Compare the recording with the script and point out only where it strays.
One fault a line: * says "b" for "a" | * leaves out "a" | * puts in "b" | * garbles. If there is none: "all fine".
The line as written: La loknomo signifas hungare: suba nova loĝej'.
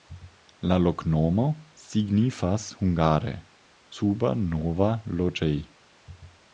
all fine